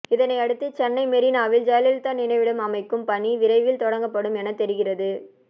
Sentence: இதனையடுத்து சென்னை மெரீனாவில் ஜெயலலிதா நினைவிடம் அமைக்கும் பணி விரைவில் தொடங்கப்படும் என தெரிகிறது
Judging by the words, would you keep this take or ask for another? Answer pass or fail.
pass